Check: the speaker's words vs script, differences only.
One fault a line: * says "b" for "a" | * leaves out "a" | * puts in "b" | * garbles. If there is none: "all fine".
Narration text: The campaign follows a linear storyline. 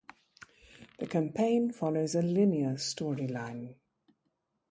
all fine